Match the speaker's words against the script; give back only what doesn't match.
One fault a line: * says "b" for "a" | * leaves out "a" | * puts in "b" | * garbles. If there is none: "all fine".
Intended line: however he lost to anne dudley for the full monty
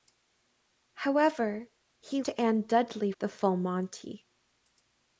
* leaves out "lost"
* leaves out "for"